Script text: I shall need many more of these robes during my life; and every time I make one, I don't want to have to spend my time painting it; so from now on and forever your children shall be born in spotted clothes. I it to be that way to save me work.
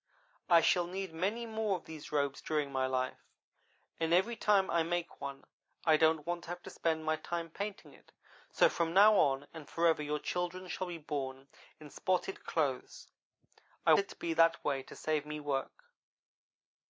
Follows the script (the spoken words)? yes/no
yes